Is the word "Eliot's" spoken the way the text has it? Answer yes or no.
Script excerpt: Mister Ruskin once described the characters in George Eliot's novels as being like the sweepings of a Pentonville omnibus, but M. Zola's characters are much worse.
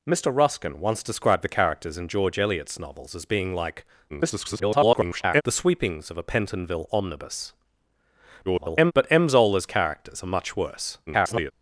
yes